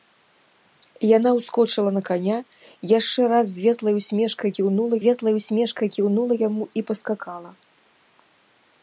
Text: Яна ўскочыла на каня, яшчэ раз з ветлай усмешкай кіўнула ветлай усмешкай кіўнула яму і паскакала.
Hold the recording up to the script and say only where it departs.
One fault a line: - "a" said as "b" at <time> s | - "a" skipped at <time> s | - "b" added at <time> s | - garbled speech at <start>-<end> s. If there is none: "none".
none